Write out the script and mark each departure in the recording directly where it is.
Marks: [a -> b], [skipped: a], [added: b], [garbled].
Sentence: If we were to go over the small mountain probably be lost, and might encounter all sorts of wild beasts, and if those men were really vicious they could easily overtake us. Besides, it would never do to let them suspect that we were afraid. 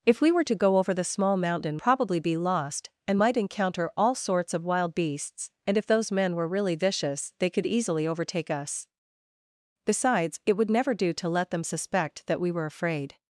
If we were to go over the small mountain probably be lost, and might encounter all sorts of wild beasts, and if those men were really vicious they could easily overtake us. Besides, it would never do to let them suspect that we were afraid.